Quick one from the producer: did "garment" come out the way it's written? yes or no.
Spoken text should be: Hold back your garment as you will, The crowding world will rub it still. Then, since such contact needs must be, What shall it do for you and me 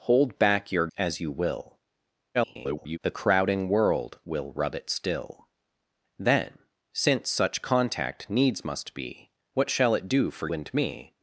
no